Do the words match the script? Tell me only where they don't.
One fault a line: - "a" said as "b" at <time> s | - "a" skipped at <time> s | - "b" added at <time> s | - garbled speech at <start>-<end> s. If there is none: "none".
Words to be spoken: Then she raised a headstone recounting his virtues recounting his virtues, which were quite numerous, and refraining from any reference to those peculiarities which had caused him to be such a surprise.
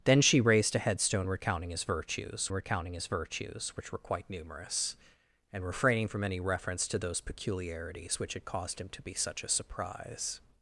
none